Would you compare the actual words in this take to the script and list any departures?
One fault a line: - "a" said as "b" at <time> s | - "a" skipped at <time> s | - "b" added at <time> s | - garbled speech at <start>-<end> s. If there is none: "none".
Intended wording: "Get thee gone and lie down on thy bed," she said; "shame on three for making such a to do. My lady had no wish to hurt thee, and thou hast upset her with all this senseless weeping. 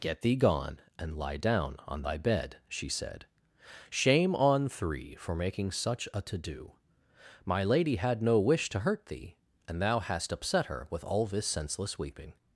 none